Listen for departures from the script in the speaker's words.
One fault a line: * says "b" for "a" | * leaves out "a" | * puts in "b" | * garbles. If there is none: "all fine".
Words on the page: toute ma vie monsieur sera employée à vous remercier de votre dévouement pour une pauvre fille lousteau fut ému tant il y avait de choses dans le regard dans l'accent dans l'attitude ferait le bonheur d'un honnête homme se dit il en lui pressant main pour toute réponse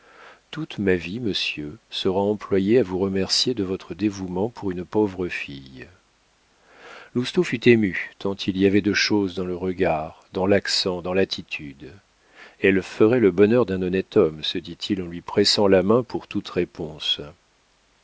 * puts in "elle"
* puts in "la"